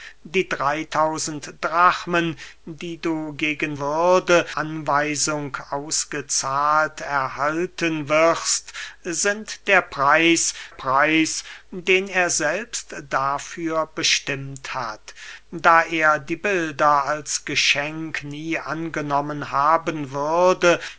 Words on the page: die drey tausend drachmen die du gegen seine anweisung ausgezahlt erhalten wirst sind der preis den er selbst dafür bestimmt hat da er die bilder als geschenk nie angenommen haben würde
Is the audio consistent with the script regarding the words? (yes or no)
no